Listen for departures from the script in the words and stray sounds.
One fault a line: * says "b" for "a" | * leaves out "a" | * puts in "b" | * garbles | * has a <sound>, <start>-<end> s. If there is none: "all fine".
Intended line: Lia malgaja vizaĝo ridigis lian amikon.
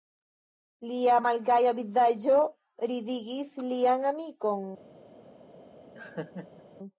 * has a laugh, 5.9-6.6 s